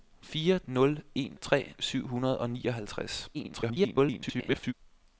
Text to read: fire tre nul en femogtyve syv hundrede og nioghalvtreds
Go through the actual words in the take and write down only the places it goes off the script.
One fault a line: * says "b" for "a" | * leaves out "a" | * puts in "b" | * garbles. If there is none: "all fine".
* leaves out "tre"
* says "tre" for "femogtyve"
* garbles